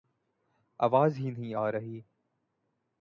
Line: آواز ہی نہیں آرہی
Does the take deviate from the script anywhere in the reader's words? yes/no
no